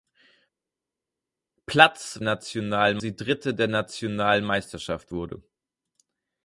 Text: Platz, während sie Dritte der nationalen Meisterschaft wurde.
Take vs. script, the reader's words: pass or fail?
fail